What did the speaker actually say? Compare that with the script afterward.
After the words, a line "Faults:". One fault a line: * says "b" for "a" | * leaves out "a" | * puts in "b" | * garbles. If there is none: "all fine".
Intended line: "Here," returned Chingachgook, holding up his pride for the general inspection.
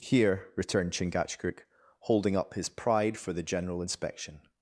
"Here," returned Chingachgook, holding up his pride for the general inspection.
Faults:
all fine